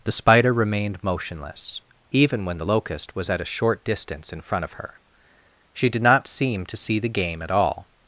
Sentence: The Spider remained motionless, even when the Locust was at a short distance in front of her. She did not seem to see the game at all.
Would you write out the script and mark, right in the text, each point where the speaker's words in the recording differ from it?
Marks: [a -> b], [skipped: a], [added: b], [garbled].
The Spider remained motionless, even when the Locust was at a short distance in front of her. She did not seem to see the game at all.